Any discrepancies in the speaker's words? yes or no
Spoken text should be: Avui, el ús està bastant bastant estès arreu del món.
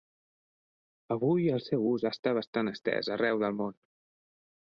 yes